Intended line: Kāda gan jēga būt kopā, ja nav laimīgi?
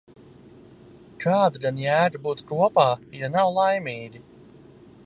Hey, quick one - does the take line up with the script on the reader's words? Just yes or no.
yes